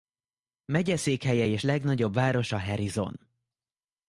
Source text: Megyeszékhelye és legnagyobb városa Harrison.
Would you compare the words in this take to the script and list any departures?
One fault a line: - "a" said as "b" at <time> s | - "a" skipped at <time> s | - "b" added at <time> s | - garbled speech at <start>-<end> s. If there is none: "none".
none